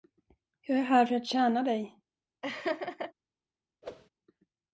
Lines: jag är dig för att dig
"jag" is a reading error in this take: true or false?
false